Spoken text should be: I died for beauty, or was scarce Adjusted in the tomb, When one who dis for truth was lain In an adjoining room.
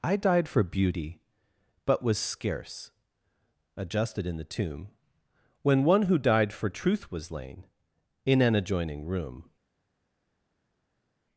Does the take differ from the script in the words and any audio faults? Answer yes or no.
yes